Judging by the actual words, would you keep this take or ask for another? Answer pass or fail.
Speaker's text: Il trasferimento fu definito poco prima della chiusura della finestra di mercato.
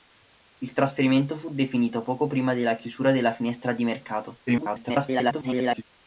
fail